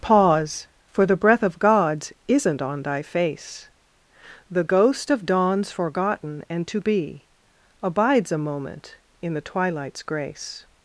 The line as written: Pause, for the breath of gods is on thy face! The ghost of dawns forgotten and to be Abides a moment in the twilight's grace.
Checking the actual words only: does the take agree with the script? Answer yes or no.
no